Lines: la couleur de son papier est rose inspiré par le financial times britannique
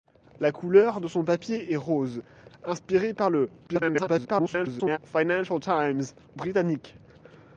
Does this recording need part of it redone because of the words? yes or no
yes